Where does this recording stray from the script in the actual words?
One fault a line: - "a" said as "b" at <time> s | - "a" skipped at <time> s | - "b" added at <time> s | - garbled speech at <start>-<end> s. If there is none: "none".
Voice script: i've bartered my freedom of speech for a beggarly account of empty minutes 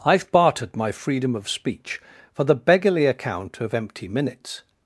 - "a" said as "the" at 2.4 s